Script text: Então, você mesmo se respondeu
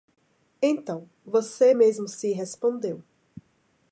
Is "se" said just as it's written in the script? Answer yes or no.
yes